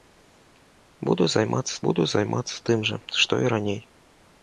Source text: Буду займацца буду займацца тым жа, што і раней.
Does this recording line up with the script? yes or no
yes